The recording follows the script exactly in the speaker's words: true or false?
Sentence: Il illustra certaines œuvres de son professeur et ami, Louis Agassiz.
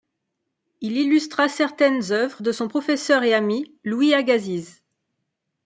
true